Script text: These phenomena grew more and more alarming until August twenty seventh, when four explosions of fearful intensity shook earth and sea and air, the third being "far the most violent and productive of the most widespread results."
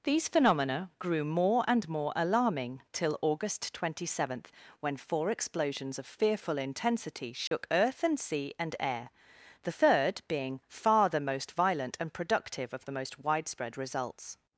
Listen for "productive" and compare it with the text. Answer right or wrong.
right